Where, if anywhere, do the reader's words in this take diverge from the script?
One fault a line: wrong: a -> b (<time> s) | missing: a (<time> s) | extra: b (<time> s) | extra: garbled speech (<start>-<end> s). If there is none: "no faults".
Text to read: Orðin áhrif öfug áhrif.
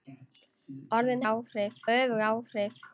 no faults